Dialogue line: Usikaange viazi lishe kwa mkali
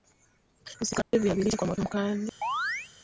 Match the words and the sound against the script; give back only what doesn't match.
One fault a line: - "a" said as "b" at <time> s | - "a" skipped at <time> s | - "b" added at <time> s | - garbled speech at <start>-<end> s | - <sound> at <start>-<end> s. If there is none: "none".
- dropout at 1.0-1.1 s
- "moto" added at 1.7 s
- chirp at 2.4-2.9 s